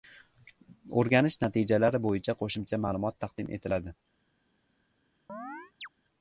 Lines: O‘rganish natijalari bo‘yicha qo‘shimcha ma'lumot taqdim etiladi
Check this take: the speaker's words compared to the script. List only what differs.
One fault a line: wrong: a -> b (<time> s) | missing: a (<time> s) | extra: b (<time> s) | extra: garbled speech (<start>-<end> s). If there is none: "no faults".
no faults